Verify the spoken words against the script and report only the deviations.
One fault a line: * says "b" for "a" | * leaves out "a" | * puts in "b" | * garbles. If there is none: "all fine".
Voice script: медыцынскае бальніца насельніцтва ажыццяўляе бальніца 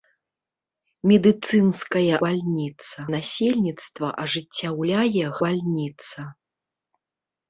all fine